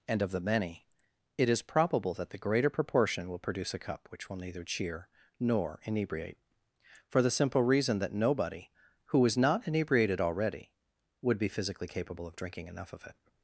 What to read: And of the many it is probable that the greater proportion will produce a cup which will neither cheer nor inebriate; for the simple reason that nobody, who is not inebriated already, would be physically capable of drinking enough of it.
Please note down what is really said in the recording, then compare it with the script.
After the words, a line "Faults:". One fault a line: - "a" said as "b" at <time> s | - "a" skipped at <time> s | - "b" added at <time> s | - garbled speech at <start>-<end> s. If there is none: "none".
And of the many it is probable that the greater proportion will produce a cup which will neither cheer nor inebriate; for the simple reason that nobody, who is not inebriated already, would be physically capable of drinking enough of it.
Faults:
none